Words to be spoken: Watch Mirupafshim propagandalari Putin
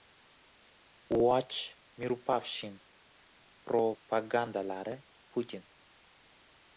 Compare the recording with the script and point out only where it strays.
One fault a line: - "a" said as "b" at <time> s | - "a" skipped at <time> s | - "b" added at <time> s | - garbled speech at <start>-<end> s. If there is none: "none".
none